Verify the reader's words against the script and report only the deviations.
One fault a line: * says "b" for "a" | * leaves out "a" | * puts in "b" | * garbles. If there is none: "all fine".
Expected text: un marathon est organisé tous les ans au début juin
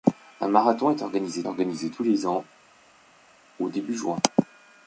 * puts in "organisé"